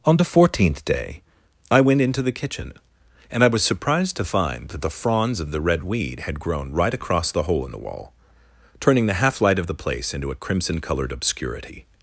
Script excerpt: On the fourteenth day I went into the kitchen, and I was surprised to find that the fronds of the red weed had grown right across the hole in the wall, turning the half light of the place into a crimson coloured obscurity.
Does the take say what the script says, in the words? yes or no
yes